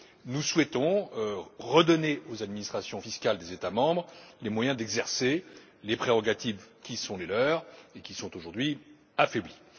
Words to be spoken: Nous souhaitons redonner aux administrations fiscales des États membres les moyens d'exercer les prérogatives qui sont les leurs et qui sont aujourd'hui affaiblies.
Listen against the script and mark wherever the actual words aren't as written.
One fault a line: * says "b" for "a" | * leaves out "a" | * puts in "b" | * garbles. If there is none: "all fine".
all fine